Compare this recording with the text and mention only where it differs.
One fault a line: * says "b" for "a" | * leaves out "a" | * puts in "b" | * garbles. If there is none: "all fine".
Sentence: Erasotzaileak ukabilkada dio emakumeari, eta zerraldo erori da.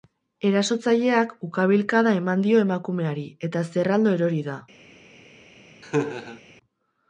* puts in "eman"